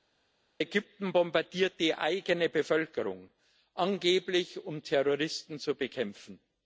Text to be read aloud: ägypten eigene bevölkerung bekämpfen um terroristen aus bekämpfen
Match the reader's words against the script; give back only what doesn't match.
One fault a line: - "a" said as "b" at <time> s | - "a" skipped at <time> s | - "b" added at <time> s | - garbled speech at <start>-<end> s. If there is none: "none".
- "bombardiert die" added at 1.1 s
- "bekämpfen" said as "angeblich" at 3.7 s
- "aus" said as "zu" at 5.6 s